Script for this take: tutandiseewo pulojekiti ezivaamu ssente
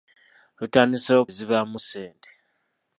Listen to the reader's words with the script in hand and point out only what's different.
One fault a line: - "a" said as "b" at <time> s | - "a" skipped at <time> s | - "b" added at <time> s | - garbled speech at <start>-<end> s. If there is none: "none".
- "pulojekiti" skipped at 1.2 s